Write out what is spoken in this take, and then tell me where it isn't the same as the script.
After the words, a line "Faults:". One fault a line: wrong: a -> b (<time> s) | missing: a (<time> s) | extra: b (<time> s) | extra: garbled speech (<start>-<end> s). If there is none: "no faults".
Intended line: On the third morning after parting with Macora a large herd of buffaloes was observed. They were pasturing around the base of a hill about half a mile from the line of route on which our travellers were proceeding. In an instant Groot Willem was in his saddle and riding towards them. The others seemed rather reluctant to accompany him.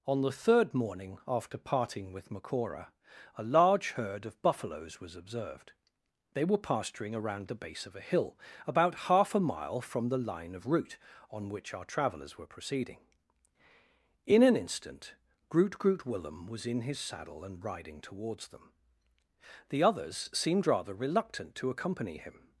On the third morning after parting with Macora a large herd of buffaloes was observed. They were pasturing around the base of a hill about half a mile from the line of route on which our travellers were proceeding. In an instant Groot Groot Willem was in his saddle and riding towards them. The others seemed rather reluctant to accompany him.
Faults:
extra: Groot (15.8 s)